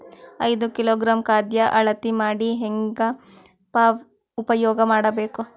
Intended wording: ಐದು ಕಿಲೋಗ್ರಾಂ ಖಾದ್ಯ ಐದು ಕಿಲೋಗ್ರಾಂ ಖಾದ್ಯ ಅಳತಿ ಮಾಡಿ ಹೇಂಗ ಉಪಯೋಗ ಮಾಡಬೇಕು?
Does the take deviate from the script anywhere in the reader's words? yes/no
yes